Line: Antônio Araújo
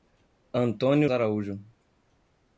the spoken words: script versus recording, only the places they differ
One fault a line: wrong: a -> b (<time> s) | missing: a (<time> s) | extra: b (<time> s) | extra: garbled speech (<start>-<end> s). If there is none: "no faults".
no faults